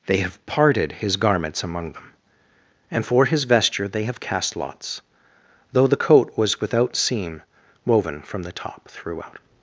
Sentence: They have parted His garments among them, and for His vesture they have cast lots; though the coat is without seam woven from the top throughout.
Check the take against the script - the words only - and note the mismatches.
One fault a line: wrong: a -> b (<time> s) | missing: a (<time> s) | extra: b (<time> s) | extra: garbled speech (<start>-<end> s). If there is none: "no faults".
wrong: is -> was (6.4 s)